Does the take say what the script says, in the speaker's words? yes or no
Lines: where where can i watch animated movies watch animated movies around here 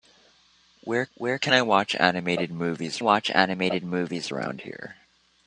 yes